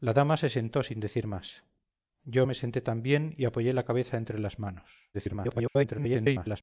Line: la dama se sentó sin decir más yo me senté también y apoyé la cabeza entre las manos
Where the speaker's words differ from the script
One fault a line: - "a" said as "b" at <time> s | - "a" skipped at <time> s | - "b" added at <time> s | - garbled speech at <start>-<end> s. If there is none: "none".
- garbled speech at 5.1-6.6 s